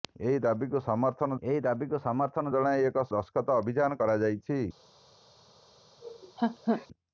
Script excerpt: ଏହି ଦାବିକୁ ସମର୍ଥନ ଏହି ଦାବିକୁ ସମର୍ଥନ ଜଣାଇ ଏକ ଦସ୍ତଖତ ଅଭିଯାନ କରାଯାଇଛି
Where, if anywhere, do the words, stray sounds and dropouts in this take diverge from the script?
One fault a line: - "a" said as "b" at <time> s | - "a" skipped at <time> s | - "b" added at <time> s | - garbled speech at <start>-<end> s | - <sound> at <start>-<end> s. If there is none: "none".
- laugh at 6.0-6.9 s